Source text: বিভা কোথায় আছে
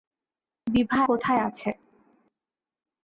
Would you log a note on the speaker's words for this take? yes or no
no